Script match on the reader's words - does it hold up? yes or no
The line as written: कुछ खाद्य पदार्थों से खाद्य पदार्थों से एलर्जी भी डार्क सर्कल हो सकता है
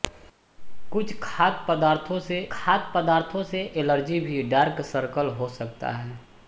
yes